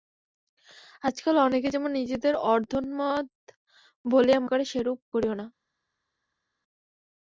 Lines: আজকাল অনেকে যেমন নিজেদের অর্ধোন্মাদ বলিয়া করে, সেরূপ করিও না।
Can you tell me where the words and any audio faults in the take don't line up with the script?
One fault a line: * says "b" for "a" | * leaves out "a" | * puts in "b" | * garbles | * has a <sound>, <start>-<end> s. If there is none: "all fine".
all fine